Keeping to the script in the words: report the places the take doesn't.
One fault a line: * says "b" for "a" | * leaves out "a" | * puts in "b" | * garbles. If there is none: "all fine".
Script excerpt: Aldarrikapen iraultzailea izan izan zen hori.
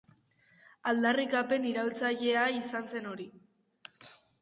* leaves out "izan"